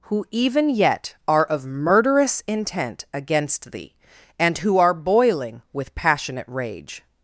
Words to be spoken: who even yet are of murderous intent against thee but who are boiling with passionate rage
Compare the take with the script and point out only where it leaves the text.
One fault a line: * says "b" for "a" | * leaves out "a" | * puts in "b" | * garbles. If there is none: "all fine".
* says "and" for "but"